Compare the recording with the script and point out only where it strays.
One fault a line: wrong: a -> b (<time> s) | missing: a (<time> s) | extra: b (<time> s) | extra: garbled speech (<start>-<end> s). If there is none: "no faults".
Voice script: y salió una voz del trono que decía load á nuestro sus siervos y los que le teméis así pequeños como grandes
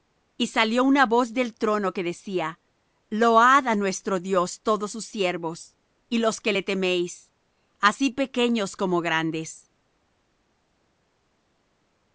extra: dios todos (4.2 s)